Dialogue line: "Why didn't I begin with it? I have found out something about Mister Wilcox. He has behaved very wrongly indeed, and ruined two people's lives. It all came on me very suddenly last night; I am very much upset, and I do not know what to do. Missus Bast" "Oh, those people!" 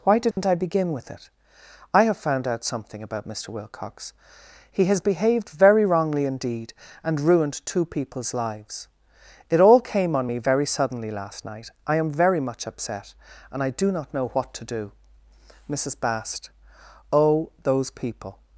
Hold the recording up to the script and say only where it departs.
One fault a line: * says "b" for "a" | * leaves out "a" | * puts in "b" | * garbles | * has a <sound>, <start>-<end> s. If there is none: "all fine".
* has a dropout, 0.3-0.4 s